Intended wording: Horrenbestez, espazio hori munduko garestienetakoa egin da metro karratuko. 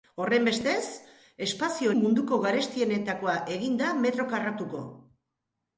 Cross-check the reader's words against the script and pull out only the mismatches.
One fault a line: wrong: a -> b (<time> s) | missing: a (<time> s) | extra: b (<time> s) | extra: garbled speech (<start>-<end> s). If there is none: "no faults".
missing: hori (1.9 s)